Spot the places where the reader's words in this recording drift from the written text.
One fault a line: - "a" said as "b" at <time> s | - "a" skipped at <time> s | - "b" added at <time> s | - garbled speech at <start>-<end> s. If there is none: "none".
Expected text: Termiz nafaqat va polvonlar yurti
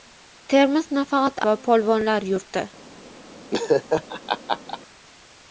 none